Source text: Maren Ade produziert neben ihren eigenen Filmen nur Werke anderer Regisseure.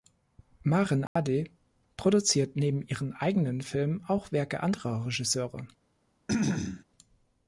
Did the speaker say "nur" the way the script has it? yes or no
no